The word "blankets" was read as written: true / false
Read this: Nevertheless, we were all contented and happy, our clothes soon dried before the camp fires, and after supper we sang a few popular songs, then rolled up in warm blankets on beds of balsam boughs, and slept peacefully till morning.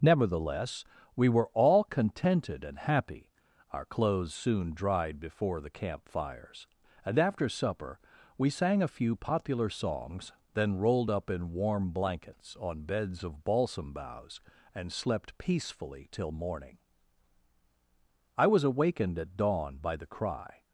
true